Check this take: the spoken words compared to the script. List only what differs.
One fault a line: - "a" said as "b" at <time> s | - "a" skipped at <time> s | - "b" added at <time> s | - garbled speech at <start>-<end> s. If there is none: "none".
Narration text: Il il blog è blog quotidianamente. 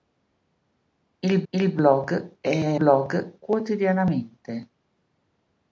none